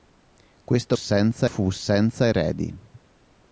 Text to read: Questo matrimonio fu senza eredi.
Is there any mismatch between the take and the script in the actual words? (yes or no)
yes